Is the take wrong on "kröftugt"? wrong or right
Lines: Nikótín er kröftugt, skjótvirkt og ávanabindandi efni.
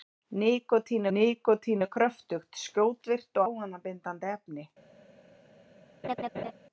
right